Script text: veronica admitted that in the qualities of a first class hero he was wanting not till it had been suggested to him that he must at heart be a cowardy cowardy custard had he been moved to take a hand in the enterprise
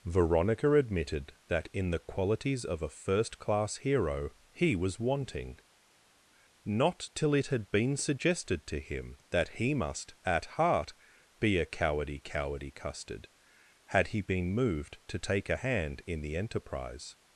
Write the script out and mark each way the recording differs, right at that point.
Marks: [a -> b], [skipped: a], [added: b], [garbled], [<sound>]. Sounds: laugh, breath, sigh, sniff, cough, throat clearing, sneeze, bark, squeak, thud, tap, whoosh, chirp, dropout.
veronica admitted that in the qualities of a first class hero he was wanting not till it had been suggested to him that he must at heart be a cowardy cowardy custard had he been moved to take a hand in the enterprise